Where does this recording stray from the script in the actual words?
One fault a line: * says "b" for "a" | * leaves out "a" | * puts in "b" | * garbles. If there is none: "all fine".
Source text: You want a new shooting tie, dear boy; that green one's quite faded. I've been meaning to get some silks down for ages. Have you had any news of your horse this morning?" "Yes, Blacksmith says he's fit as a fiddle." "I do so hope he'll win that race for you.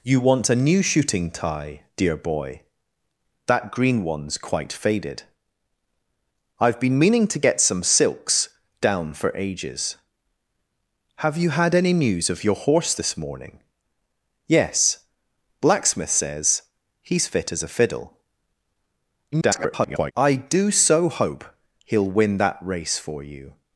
* garbles